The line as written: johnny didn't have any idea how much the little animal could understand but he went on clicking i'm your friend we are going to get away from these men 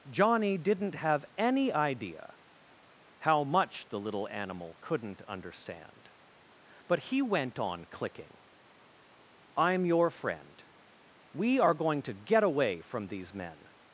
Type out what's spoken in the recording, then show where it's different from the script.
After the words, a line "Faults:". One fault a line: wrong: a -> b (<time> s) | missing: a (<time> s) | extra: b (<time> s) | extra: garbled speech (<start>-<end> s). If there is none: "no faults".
johnny didn't have any idea how much the little animal couldn't understand but he went on clicking i'm your friend we are going to get away from these men
Faults:
wrong: could -> couldn't (4.8 s)